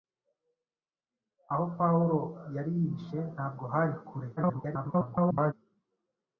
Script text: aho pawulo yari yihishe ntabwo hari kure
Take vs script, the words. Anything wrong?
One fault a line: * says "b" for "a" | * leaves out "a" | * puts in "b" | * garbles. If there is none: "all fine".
* garbles